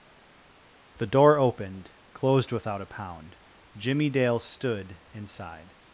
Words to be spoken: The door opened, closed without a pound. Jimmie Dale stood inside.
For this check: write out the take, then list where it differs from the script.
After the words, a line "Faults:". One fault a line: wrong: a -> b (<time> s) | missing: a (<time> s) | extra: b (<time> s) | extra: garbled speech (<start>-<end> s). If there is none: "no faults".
The door opened, closed without a pound. Jimmie Dale stood inside.
Faults:
no faults